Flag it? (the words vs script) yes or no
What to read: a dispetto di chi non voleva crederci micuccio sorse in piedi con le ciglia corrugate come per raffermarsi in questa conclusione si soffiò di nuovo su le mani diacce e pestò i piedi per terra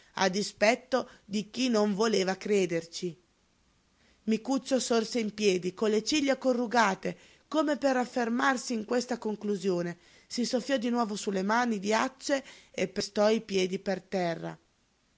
no